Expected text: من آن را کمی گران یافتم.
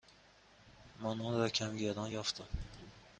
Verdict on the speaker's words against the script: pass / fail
pass